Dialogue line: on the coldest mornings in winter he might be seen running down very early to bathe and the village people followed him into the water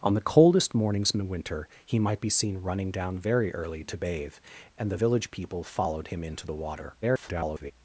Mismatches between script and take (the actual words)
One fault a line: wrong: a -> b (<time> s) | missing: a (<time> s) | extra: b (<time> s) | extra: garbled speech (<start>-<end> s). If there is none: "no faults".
extra: garbled speech (7.0-7.7 s)